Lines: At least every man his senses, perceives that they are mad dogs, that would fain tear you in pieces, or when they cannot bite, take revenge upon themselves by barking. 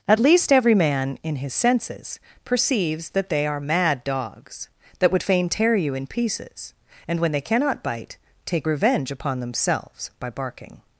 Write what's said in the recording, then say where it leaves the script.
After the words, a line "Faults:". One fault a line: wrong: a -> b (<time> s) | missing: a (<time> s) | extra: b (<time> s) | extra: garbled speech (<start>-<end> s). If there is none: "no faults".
At least every man in his senses, perceives that they are mad dogs, that would fain tear you in pieces, and when they cannot bite, take revenge upon themselves by barking.
Faults:
extra: in (1.2 s)
wrong: or -> and (7.1 s)